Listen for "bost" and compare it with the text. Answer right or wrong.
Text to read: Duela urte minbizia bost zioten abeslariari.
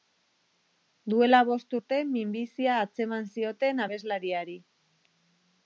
wrong